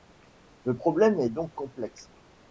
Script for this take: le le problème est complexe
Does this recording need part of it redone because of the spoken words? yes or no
yes